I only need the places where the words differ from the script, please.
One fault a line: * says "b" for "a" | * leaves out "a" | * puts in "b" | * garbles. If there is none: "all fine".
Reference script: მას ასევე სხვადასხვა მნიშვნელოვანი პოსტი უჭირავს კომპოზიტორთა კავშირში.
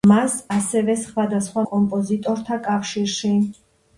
* leaves out "მნიშვნელოვანი პოსტი უჭირავს"